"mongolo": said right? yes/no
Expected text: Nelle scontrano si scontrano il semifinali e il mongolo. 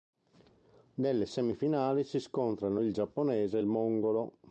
yes